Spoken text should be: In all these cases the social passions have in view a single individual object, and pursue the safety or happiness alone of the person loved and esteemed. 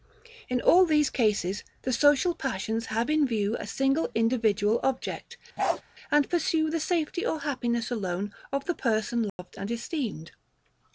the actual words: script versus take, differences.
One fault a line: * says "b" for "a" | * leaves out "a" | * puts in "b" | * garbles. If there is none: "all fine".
all fine